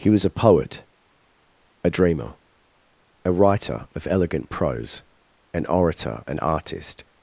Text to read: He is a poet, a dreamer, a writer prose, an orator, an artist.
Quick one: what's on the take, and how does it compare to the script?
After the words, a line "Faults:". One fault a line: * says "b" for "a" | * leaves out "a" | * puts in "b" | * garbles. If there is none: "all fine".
He was a poet, a dreamer, a writer of elegant prose, an orator, an artist.
Faults:
* says "was" for "is"
* puts in "of elegant"